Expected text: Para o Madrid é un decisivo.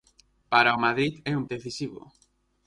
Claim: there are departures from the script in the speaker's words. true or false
false